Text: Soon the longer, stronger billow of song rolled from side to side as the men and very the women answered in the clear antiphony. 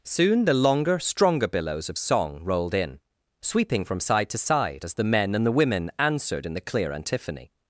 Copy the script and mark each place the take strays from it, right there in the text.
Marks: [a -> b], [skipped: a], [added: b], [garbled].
Soon the longer, stronger [billow -> billows] of song rolled [added: in sweeping] from side to side as the men and [skipped: very] the women answered in the clear antiphony.